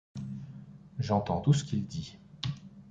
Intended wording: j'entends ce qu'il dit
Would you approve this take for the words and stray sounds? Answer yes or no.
no